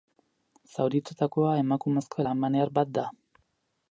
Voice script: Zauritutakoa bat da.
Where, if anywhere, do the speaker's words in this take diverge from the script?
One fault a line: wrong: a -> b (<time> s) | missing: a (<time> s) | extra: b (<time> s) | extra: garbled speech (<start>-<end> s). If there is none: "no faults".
extra: emakumezko alemaniar (1.6 s)